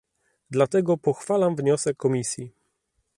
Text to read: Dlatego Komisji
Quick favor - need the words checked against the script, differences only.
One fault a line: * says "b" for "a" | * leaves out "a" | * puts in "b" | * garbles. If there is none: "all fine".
* puts in "pochwalam wniosek"